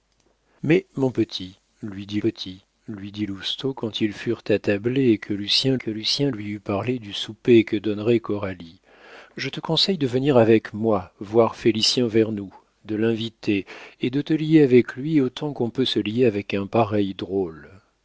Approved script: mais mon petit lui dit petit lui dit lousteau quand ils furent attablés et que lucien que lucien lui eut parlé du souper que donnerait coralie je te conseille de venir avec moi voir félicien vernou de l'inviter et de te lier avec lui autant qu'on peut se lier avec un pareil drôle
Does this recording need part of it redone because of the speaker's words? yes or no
no